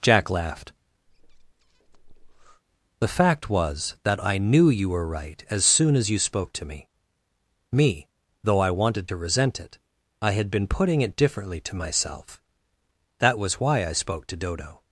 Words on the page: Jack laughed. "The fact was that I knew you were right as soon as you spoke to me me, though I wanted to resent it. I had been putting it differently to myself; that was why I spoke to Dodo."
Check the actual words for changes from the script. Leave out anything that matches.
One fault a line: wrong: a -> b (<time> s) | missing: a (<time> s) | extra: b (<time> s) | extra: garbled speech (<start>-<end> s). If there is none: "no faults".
no faults